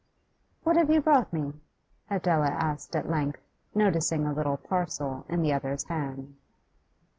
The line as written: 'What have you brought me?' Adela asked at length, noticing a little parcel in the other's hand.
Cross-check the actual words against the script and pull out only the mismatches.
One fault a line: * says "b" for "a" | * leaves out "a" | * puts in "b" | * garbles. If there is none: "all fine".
all fine